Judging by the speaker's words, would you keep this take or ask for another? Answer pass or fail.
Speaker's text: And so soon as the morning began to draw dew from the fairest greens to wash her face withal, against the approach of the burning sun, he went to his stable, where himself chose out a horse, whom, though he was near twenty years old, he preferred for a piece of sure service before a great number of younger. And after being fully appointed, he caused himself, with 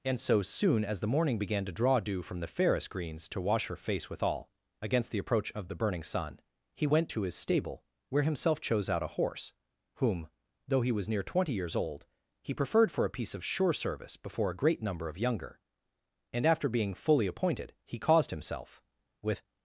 pass